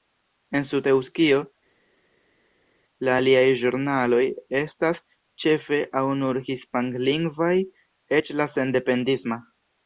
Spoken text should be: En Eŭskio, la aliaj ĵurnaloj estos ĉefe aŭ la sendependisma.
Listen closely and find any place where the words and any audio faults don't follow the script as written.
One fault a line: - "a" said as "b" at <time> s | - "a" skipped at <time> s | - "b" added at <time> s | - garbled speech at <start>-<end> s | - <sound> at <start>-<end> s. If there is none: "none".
- "Sud" added at 0.7 s
- "estos" said as "estas" at 4.6 s
- "nur hispanlingvaj eĉ" added at 6.3 s